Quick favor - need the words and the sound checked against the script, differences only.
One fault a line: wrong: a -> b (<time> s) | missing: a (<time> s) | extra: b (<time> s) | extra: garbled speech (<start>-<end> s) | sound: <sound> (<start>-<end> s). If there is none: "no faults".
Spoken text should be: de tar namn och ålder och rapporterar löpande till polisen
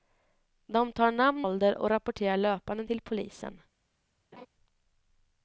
missing: och (1.5 s)
sound: laugh (4.3-4.5 s)